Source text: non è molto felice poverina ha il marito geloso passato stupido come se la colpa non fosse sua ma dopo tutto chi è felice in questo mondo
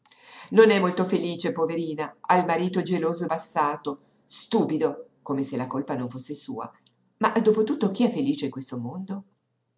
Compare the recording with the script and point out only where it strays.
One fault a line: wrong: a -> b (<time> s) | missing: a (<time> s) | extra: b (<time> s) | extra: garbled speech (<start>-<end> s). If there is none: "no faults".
no faults